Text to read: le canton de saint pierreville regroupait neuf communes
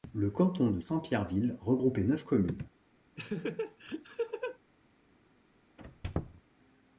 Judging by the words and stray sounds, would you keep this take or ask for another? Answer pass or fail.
fail